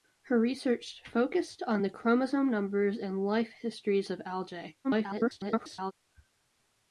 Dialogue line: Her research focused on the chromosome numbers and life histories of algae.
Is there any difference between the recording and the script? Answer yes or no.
yes